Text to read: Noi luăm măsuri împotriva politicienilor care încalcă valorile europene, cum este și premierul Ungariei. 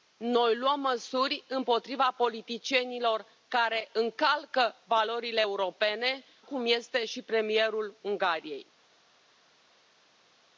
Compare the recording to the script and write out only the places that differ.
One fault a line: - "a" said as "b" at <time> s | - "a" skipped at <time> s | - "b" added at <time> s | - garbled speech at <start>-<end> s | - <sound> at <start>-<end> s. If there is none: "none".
none